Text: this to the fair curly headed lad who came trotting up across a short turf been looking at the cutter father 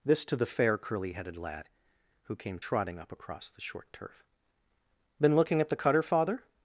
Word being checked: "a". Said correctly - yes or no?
no